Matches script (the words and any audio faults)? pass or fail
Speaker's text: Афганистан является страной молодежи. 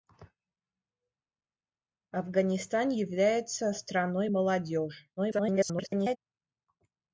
fail